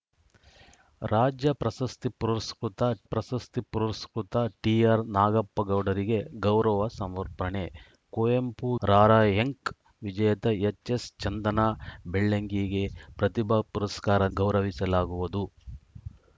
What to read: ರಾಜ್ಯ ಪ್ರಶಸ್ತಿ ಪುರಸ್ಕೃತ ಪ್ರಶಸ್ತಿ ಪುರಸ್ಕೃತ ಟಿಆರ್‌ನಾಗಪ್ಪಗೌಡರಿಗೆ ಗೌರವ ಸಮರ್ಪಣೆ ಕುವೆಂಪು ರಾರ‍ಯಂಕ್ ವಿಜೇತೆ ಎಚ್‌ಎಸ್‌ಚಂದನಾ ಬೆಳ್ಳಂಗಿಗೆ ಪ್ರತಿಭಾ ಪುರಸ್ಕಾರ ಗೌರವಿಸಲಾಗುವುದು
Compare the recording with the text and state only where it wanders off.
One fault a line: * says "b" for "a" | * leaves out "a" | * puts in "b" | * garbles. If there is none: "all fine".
all fine